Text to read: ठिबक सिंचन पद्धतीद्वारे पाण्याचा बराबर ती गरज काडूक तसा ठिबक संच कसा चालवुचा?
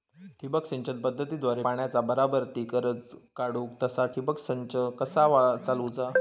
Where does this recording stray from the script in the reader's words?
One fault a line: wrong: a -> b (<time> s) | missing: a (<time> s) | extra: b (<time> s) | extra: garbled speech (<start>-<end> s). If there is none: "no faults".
no faults